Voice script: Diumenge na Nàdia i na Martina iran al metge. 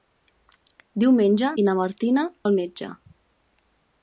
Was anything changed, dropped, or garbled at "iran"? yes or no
yes